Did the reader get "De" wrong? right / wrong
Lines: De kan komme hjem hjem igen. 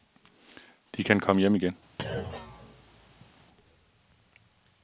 right